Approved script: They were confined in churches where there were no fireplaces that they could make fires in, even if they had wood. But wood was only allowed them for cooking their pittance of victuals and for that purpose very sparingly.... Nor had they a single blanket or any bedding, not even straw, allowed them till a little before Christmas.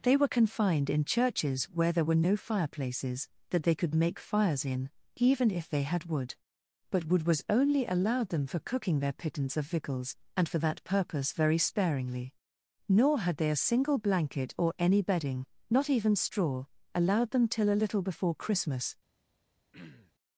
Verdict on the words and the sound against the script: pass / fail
fail